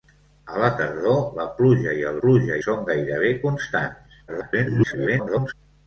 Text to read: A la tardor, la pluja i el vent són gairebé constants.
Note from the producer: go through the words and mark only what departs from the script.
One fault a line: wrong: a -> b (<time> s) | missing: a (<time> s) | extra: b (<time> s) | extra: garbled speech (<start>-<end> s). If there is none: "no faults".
wrong: vent -> pluja (2.2 s)
extra: garbled speech (4.3-5.5 s)